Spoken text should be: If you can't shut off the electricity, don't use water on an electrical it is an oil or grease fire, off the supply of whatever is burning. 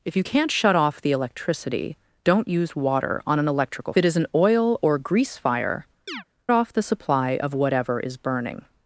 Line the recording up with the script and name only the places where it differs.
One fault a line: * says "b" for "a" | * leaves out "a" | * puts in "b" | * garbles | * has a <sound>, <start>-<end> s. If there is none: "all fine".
* has a chirp, 6.1-6.2 s